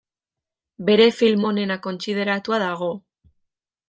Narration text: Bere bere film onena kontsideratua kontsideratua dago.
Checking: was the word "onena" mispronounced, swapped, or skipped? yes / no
no